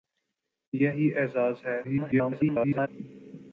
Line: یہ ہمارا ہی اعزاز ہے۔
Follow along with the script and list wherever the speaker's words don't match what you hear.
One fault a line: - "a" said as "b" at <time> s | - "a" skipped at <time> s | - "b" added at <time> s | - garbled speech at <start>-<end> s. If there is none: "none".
- "ہمارا" skipped at 0.9 s
- garbled speech at 1.8-2.9 s